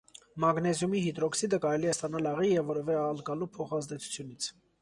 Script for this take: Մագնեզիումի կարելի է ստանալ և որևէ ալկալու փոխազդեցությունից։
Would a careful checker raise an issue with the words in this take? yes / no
yes